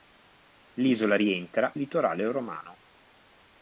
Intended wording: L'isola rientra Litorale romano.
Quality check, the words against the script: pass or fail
pass